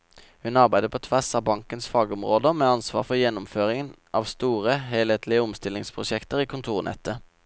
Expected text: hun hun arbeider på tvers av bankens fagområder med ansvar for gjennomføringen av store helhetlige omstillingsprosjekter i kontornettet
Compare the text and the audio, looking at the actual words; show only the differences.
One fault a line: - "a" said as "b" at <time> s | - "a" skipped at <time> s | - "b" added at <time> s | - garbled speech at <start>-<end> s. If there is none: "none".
- "hun" skipped at 0.6 s